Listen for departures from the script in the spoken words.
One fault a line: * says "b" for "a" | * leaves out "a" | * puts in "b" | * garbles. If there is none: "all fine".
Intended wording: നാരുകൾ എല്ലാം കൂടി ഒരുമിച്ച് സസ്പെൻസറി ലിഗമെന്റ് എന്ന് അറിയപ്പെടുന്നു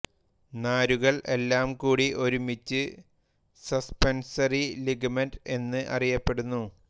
all fine